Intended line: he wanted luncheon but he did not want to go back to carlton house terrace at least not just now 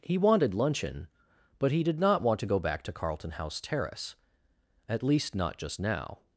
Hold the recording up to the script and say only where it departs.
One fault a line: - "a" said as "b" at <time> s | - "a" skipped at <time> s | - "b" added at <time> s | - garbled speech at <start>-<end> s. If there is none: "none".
none